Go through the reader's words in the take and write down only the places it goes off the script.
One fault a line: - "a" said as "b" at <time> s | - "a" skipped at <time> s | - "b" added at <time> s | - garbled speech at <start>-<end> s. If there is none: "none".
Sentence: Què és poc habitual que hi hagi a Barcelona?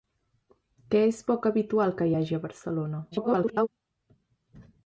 - garbled speech at 3.1-3.7 s